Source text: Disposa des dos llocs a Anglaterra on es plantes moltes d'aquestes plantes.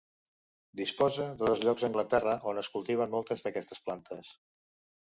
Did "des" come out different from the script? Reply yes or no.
yes